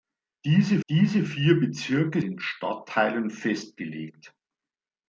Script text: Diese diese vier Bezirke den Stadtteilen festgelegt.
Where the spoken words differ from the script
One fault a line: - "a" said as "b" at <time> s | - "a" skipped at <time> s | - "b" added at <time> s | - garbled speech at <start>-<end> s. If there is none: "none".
none